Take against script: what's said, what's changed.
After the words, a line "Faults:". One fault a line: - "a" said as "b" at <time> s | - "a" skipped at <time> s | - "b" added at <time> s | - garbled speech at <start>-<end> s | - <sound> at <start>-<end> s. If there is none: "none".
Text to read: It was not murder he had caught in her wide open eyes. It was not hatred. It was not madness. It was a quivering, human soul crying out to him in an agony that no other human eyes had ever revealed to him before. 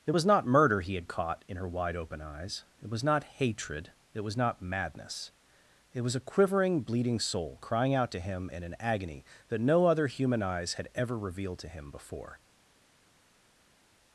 It was not murder he had caught in her wide open eyes. It was not hatred. It was not madness. It was a quivering, bleeding soul crying out to him in an agony that no other human eyes had ever revealed to him before.
Faults:
- "human" said as "bleeding" at 6.8 s